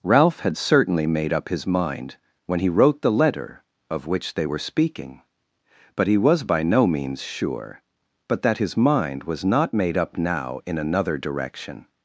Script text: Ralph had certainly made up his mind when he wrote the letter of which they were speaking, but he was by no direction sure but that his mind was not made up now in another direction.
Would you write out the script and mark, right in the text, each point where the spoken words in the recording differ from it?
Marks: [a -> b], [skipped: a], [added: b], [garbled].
Ralph had certainly made up his mind when he wrote the letter of which they were speaking, but he was by no [direction -> means] sure but that his mind was not made up now in another direction.